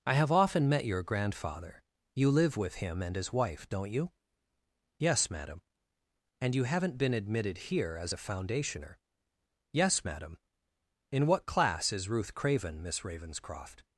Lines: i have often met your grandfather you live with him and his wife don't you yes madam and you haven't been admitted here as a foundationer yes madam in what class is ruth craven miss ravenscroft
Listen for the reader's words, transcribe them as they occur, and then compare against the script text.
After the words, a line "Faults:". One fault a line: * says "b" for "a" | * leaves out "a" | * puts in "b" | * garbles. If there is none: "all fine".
i have often met your grandfather you live with him and his wife don't you yes madam and you haven't been admitted here as a foundationer yes madam in what class is ruth craven miss ravenscroft
Faults:
all fine